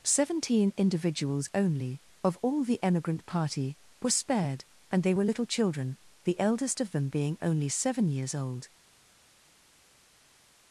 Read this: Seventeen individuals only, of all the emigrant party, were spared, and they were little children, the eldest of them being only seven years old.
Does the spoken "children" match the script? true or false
true